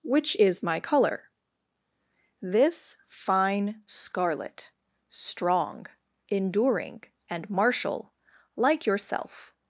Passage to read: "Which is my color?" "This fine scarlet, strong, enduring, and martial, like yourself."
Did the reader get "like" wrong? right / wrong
right